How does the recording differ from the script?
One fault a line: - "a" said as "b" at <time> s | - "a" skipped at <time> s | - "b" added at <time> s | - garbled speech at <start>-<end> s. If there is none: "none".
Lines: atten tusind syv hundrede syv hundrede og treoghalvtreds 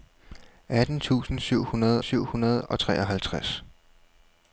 none